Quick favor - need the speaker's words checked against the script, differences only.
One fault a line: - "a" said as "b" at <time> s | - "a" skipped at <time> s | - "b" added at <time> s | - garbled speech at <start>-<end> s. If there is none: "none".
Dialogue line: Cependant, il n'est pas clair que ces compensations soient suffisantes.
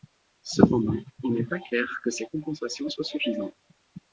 none